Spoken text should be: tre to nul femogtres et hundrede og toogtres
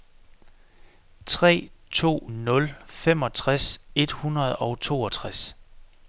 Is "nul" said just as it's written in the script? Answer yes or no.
yes